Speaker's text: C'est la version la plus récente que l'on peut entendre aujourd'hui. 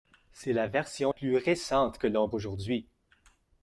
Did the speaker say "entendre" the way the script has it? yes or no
no